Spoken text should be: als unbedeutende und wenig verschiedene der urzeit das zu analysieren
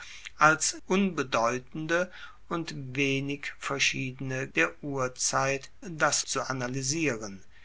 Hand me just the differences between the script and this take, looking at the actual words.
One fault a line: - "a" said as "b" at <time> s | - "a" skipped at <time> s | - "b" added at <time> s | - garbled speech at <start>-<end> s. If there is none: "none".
none